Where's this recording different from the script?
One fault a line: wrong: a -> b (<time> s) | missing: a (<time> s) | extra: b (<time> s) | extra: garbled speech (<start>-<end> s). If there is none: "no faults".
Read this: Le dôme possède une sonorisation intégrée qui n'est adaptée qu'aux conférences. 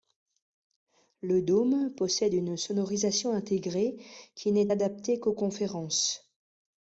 no faults